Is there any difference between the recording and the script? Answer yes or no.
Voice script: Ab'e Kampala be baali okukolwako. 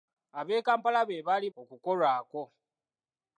no